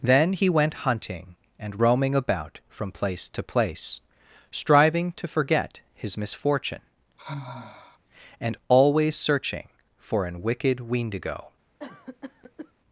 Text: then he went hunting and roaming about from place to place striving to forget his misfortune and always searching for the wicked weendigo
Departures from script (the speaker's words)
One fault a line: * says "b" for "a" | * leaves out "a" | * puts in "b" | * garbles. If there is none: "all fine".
* says "an" for "the"